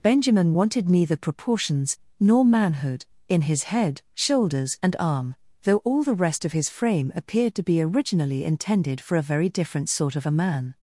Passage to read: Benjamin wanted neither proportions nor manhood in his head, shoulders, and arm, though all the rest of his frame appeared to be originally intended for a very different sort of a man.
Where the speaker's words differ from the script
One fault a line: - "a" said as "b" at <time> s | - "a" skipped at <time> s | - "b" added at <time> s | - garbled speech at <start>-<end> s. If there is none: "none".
none